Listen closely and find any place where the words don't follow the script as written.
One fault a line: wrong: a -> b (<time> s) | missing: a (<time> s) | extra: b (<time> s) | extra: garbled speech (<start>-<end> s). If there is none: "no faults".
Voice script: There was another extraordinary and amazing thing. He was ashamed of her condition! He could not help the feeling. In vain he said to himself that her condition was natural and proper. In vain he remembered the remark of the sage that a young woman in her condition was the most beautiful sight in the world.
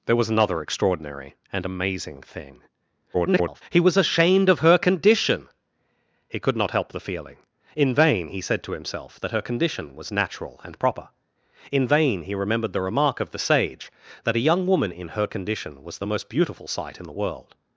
extra: garbled speech (3.1-3.6 s)